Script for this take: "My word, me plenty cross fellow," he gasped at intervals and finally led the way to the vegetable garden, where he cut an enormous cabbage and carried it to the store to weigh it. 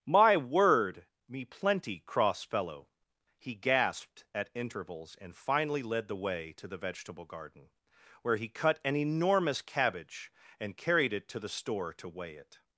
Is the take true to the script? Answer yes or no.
yes